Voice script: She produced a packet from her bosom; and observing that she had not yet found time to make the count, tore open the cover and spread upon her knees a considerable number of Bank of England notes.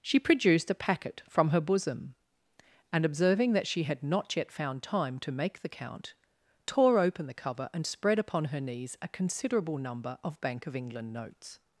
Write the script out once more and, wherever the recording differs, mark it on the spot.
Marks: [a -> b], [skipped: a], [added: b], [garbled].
She produced a packet from her bosom; and observing that she had not yet found time to make the count, tore open the cover and spread upon her knees a considerable number of Bank of England notes.